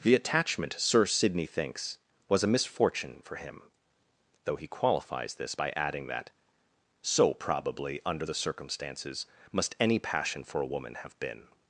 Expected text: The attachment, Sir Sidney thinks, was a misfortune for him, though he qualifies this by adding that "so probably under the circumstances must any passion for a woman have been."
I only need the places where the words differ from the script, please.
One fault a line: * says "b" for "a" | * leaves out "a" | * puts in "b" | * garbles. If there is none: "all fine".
all fine